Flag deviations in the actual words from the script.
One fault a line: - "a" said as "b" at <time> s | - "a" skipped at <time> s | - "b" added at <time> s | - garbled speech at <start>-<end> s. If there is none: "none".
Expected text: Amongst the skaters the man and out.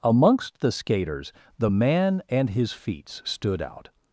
- "his feats stood" added at 2.5 s